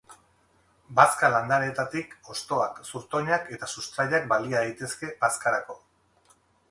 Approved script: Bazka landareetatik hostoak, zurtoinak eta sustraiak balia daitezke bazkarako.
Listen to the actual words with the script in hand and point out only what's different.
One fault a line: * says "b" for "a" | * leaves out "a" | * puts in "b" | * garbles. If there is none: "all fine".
all fine